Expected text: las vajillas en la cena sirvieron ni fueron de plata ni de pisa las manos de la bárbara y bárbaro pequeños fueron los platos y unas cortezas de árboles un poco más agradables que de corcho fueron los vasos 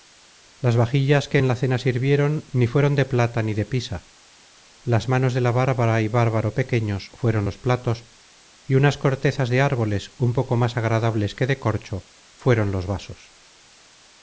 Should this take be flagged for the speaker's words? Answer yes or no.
yes